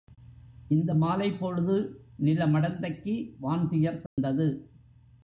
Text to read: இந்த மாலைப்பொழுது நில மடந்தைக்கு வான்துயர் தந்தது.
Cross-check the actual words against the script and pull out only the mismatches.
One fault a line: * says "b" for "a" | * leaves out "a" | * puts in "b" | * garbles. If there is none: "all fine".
all fine